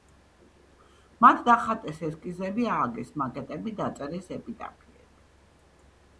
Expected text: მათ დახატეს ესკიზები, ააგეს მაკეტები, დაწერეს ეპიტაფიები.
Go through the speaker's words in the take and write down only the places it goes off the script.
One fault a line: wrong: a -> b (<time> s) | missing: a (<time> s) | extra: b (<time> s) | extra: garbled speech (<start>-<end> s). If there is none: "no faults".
no faults